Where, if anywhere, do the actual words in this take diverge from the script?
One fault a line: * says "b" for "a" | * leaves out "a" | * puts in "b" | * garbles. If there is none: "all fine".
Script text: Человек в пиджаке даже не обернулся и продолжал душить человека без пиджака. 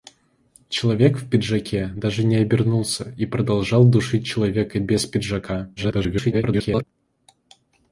* garbles